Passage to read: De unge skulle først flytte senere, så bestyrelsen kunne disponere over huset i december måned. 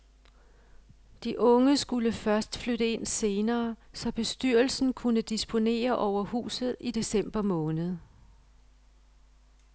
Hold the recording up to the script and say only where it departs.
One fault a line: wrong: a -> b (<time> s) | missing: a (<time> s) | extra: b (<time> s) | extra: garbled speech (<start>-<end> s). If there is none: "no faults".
extra: ind (2.9 s)